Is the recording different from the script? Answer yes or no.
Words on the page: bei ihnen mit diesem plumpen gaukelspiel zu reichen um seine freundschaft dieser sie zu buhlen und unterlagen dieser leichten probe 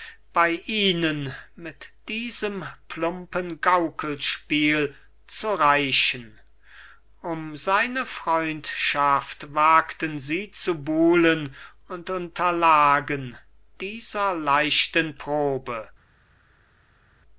yes